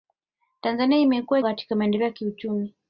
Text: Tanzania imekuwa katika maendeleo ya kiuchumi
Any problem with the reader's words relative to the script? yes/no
no